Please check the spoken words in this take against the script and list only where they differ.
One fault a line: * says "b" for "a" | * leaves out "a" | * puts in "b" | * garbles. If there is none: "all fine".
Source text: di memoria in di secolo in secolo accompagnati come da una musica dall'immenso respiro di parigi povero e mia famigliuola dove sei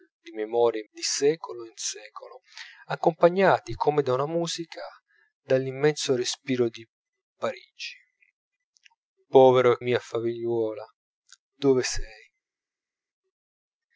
all fine